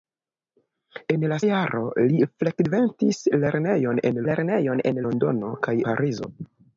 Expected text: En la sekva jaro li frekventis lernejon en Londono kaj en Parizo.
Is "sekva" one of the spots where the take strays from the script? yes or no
yes